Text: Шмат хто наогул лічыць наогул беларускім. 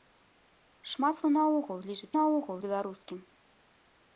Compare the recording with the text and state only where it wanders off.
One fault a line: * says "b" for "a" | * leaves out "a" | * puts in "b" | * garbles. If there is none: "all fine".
all fine